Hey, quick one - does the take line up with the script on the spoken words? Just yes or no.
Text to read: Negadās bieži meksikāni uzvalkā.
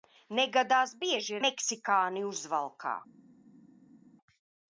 yes